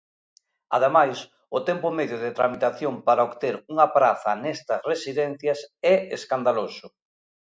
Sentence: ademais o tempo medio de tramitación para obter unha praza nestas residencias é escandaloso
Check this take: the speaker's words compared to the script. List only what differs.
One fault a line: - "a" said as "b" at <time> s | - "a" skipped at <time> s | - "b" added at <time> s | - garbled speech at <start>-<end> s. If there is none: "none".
none